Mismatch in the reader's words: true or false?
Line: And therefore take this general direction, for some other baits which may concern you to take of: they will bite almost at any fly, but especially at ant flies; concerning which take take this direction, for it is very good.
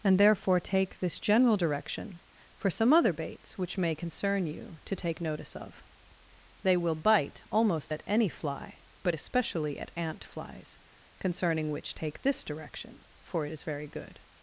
true